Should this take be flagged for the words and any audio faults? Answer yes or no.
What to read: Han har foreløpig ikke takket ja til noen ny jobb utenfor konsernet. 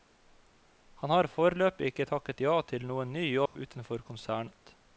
yes